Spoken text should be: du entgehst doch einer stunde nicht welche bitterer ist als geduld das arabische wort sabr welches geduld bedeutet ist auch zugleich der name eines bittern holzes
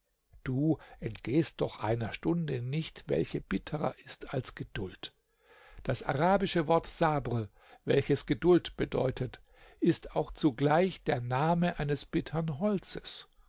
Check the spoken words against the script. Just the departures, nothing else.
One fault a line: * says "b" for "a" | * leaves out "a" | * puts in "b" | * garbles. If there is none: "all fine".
all fine